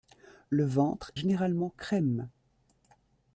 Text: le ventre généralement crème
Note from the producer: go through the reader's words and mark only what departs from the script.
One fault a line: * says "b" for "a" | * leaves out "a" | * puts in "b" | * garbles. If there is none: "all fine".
all fine